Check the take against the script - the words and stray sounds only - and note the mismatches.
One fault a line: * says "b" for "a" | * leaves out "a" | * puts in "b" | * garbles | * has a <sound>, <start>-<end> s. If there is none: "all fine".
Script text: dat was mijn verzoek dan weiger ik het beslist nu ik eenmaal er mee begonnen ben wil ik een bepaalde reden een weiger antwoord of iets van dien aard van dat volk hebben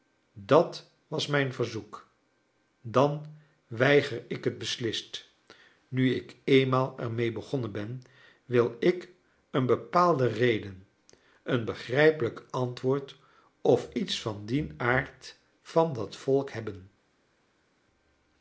* says "begrijpelijk" for "weiger"